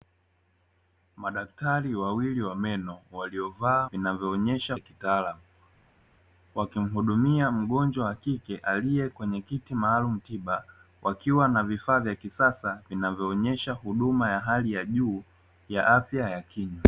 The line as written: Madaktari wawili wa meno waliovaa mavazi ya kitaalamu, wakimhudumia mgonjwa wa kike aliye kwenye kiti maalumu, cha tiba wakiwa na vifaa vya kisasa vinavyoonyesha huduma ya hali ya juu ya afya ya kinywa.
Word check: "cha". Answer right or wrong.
wrong